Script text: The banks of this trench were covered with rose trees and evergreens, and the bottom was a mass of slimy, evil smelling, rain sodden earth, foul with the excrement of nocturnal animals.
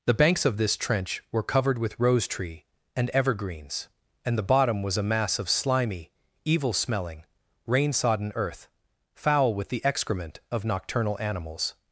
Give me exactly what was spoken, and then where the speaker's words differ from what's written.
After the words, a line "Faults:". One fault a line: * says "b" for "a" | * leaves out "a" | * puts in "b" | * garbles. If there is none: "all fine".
The banks of this trench were covered with rose tree and evergreens, and the bottom was a mass of slimy, evil smelling, rain sodden earth, foul with the excrement of nocturnal animals.
Faults:
* says "tree" for "trees"